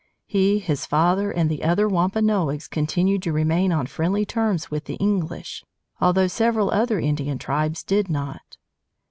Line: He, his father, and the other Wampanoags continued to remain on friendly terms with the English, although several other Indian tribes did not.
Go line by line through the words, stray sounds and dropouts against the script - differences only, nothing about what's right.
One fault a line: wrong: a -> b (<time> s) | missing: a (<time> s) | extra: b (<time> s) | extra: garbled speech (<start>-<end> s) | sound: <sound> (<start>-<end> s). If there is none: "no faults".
no faults